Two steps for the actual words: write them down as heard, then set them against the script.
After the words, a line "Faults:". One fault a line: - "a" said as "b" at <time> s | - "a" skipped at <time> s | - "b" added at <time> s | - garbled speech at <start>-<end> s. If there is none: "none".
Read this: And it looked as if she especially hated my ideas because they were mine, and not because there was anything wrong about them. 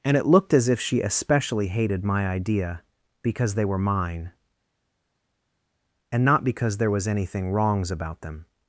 And it looked as if she especially hated my idea because they were mine, and not because there was anything wrongs about them.
Faults:
- "ideas" said as "idea" at 2.3 s
- "wrong" said as "wrongs" at 7.5 s